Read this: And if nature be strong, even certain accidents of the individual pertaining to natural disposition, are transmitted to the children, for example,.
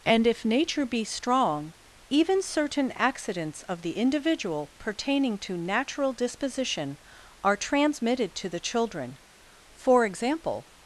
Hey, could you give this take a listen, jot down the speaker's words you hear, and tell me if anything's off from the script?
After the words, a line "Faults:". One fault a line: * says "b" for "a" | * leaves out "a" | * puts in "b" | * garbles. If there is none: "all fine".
And if nature be strong, even certain accidents of the individual pertaining to natural disposition, are transmitted to the children, for example,.
Faults:
all fine